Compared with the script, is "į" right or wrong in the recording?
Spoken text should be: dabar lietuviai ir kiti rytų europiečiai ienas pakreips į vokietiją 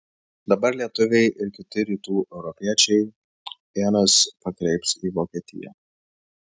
right